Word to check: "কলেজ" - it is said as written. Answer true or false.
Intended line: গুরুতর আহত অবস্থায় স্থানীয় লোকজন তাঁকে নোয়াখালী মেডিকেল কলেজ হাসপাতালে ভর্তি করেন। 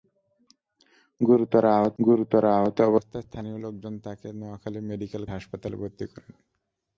false